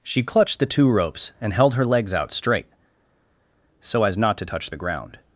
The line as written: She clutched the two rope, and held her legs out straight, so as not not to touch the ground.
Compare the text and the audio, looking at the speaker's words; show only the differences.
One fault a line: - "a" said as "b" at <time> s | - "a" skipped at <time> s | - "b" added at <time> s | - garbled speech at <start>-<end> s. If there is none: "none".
- "rope" said as "ropes" at 0.9 s
- "not" skipped at 4.4 s